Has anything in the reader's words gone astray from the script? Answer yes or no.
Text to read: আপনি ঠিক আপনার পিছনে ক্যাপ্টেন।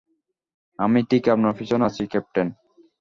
yes